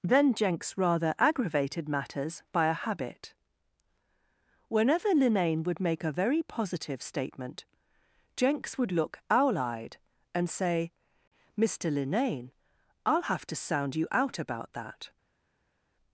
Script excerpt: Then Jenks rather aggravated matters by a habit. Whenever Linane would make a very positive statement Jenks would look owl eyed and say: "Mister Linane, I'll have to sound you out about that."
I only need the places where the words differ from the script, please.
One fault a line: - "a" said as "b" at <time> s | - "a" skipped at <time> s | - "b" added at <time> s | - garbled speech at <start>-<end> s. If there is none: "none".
none